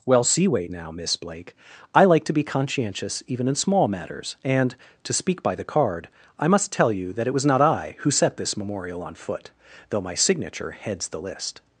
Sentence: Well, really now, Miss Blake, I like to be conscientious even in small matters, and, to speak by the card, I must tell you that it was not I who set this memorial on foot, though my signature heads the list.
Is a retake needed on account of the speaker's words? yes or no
yes